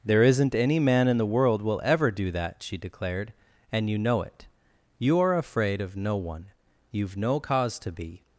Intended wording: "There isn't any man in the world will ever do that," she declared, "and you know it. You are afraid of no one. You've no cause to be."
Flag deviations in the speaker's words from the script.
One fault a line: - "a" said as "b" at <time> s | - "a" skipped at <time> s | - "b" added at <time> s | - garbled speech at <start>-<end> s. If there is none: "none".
none